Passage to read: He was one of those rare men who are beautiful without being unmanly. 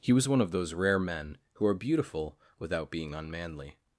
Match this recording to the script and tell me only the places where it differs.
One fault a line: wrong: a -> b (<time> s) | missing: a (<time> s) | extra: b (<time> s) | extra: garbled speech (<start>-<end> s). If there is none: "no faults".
no faults